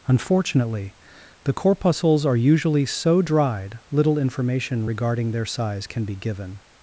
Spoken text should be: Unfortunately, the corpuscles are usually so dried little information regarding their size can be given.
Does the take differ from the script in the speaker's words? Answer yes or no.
no